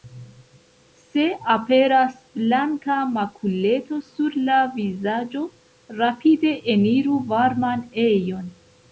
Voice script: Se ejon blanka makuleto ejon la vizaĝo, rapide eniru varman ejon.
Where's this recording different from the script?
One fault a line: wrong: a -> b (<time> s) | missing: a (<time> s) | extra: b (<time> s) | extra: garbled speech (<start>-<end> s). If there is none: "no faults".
wrong: ejon -> aperas (1.6 s)
wrong: ejon -> sur (4.1 s)